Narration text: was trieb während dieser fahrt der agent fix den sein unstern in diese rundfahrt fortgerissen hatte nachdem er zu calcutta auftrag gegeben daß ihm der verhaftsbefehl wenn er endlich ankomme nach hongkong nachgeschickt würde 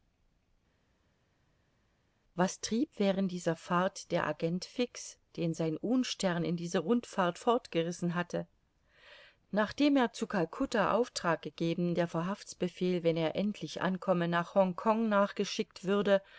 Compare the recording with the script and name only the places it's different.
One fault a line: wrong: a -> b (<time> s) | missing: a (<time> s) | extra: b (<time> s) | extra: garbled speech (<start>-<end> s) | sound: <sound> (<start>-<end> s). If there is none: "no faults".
missing: daß ihm (11.9 s)